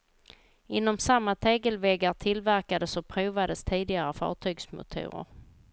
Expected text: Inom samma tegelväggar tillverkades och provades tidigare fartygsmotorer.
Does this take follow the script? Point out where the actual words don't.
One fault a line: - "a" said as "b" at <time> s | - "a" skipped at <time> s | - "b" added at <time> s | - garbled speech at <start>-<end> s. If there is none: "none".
none